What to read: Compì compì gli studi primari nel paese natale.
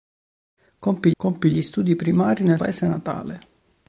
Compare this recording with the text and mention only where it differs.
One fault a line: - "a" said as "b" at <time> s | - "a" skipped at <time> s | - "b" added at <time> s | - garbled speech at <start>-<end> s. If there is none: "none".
none